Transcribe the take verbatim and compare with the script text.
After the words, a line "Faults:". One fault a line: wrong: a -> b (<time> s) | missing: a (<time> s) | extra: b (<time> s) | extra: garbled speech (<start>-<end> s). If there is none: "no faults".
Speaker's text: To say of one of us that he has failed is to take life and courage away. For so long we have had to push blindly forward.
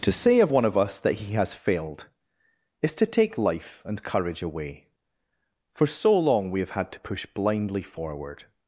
To say of one of us that he has failed is to take life and courage away. For so long we have had to push blindly forward.
Faults:
no faults